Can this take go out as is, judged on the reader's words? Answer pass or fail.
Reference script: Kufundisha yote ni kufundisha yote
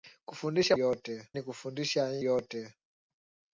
pass